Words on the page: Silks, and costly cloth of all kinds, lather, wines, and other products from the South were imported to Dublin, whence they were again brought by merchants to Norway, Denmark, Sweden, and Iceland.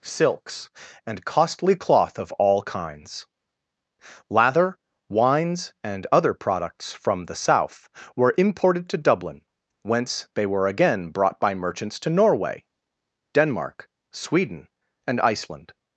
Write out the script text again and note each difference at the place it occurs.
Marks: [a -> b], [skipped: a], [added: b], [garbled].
Silks, and costly cloth of all kinds, lather, wines, and other products from the South were imported to Dublin, whence they were again brought by merchants to Norway, Denmark, Sweden, and Iceland.